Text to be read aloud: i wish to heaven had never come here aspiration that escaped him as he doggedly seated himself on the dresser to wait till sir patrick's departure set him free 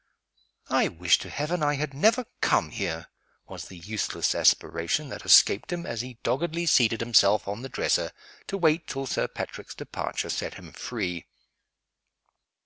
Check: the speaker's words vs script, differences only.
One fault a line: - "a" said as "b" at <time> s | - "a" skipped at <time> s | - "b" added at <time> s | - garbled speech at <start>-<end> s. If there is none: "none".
- "i" added at 1.6 s
- "was the useless" added at 3.5 s